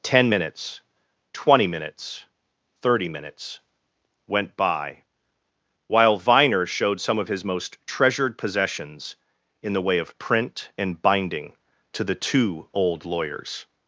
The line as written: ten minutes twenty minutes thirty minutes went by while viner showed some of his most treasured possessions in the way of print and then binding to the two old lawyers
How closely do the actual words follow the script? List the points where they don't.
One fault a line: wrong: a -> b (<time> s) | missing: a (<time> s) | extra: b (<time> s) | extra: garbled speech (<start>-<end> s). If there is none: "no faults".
missing: then (11.0 s)